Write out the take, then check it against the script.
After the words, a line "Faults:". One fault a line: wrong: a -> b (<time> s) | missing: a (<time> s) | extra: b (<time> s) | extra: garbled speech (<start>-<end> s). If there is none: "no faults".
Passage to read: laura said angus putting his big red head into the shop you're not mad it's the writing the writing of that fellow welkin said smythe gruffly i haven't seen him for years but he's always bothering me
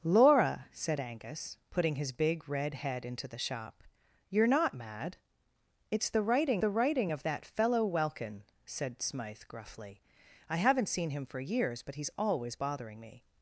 laura said angus putting his big red head into the shop you're not mad it's the writing the writing of that fellow welkin said smythe gruffly i haven't seen him for years but he's always bothering me
Faults:
no faults